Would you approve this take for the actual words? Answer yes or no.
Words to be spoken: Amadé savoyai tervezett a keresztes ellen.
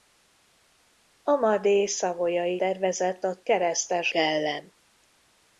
yes